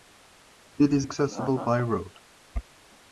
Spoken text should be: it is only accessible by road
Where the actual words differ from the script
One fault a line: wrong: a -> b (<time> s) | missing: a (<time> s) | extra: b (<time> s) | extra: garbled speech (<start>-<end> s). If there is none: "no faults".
missing: only (1.1 s)